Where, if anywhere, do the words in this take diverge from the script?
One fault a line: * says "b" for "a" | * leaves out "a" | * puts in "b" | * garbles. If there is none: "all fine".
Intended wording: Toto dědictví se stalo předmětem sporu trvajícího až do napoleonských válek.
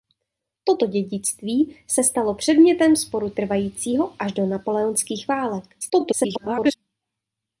* garbles